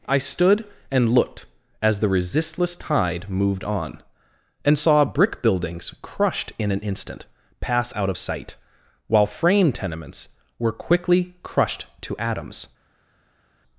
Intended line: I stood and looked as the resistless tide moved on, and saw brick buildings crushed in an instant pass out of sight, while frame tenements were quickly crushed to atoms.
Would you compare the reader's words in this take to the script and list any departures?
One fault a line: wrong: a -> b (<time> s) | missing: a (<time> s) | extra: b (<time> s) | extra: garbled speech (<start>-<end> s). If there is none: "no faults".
no faults